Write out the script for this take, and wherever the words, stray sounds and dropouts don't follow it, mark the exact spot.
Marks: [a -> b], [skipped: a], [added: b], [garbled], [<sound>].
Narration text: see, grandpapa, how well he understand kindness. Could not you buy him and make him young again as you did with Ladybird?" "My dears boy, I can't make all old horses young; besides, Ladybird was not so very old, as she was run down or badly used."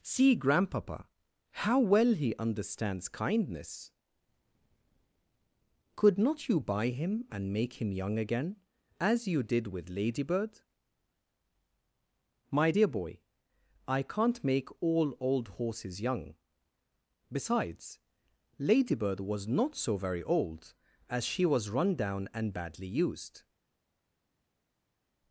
see, grandpapa, how well he [understand -> understands] kindness. Could not you buy him and make him young again as you did with Ladybird?" "My [dears -> dear] boy, I can't make all old horses young; besides, Ladybird was not so very old, as she was run down [or -> and] badly used."